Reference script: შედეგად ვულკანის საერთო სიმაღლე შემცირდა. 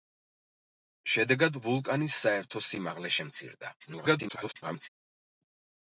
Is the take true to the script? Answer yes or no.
no